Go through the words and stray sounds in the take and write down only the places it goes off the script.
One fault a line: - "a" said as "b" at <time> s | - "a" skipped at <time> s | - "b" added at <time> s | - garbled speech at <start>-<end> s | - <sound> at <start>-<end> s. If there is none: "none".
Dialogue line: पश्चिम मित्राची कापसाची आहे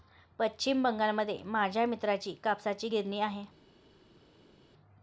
- "बंगालमध्ये माझ्या" added at 0.8 s
- "गिरणी" added at 2.9 s